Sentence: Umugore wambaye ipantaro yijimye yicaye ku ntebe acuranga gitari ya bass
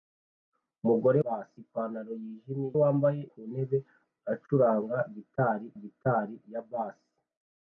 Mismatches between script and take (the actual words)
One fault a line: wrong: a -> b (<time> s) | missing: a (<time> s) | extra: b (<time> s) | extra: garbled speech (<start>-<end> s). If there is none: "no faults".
wrong: wambaye -> bass (1.2 s)
wrong: yicaye -> wambaye (2.8 s)
extra: gitari (5.8 s)